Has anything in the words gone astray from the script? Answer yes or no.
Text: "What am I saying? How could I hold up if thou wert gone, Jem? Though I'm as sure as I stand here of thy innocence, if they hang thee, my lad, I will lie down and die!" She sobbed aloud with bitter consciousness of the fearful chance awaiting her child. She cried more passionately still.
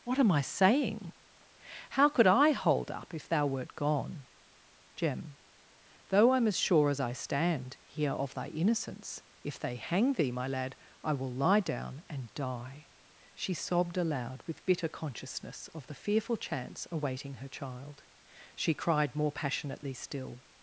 no